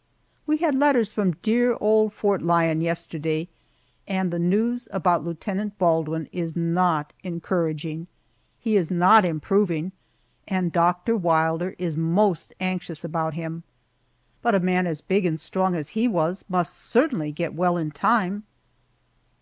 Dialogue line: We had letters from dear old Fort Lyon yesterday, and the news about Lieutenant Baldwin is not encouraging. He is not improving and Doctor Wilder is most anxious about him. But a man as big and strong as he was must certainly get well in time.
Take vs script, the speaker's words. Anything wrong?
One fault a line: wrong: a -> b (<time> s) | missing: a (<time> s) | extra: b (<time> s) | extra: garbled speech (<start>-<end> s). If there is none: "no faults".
no faults